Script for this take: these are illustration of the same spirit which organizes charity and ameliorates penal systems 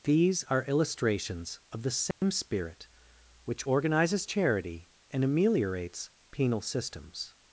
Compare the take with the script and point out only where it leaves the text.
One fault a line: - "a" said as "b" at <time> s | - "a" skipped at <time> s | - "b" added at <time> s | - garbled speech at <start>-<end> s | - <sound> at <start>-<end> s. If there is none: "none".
- "illustration" said as "illustrations" at 0.6 s
- dropout at 2.1-2.2 s